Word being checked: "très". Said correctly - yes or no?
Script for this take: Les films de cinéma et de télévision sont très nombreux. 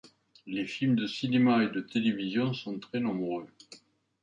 yes